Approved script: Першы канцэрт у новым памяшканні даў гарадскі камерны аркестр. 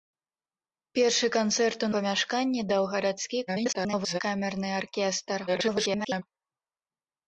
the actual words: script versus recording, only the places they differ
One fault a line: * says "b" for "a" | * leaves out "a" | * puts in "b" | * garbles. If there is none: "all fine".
* leaves out "новым"
* garbles
* garbles